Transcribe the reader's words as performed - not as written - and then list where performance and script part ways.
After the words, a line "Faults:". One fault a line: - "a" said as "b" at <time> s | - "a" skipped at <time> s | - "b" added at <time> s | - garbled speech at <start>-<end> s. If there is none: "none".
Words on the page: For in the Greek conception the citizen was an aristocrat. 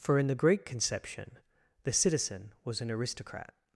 For in the Greek conception the citizen was an aristocrat.
Faults:
none